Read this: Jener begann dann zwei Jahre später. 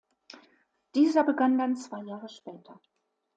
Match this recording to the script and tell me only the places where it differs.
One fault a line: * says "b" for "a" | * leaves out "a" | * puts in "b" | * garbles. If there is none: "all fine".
* says "Dieser" for "Jener"